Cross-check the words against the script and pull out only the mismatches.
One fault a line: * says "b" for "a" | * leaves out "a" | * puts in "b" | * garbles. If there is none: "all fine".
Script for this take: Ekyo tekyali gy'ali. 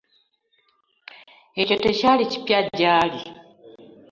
* puts in "kipya"